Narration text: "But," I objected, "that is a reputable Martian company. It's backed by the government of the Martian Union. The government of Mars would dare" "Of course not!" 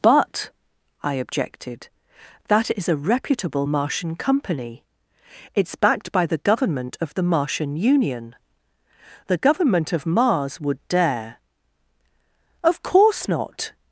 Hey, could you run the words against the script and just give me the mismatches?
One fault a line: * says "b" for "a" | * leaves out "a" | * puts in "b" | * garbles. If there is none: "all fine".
all fine